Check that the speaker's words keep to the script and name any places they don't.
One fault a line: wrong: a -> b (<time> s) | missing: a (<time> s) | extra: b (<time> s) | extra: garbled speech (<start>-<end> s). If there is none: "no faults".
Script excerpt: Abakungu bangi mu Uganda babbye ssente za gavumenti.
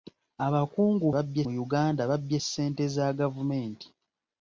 wrong: bangi -> babbye (1.1 s)